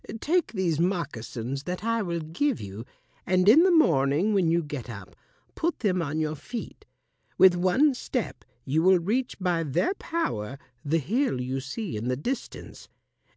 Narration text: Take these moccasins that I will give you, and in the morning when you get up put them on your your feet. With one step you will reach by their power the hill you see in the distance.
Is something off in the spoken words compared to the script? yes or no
yes